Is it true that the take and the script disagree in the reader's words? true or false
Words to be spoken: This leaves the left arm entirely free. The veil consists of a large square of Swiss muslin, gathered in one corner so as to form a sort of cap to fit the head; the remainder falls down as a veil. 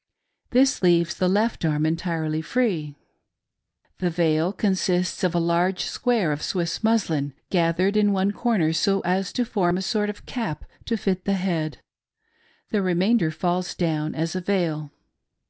false